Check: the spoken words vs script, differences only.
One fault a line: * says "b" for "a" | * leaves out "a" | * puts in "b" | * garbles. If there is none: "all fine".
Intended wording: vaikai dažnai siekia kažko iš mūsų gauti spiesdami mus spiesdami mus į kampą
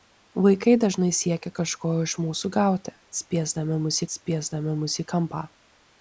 all fine